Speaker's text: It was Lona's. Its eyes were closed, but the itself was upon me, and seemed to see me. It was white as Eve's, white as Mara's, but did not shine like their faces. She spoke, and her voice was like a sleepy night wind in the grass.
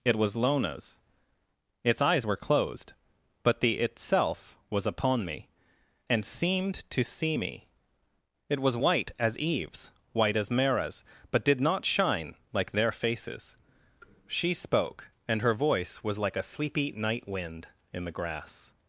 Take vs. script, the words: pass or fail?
pass